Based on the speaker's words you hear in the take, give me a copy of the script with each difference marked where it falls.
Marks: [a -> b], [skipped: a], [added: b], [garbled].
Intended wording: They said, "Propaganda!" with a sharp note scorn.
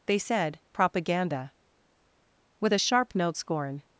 They said, "Propaganda!" with a sharp note scorn.